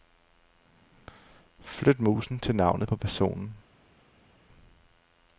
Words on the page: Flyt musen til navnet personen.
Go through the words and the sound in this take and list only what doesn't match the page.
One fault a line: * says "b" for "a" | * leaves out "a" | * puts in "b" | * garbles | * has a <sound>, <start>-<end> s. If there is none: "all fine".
* puts in "på"